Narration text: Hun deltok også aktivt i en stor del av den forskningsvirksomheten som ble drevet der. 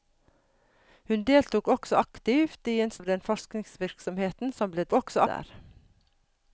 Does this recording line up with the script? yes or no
no